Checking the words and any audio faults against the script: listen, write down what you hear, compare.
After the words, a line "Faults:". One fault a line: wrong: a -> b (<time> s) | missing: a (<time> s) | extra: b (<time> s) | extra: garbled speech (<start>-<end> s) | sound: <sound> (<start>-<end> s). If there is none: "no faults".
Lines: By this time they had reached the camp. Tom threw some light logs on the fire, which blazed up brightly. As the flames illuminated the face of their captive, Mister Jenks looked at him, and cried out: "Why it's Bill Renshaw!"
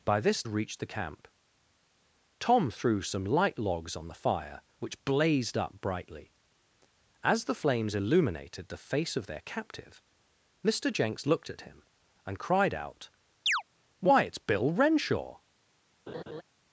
By this reached the camp. Tom threw some light logs on the fire, which blazed up brightly. As the flames illuminated the face of their captive, Mister Jenks looked at him, and cried out: "Why it's Bill Renshaw!"
Faults:
missing: time they had (0.4 s)
sound: chirp (13.5-13.6 s)
sound: laugh (16.1-16.4 s)